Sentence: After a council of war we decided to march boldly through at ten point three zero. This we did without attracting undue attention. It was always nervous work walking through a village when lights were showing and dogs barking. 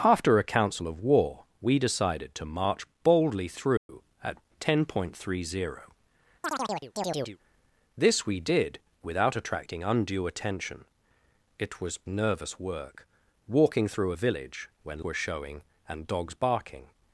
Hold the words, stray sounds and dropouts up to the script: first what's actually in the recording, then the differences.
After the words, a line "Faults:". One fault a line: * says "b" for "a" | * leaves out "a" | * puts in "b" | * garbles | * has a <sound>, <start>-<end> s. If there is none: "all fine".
After a council of war we decided to march boldly through at ten point three zero. This we did without attracting undue attention. It was nervous work walking through a village when were showing and dogs barking.
Faults:
* has a dropout, 3.8-3.9 s
* has a chirp, 6.4-7.4 s
* leaves out "always"
* leaves out "lights"